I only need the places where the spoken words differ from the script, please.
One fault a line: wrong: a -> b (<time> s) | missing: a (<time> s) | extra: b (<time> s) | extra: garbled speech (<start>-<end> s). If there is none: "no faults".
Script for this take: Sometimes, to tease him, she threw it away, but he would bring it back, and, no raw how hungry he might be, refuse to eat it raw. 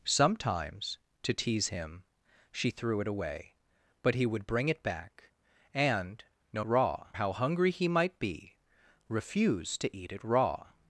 no faults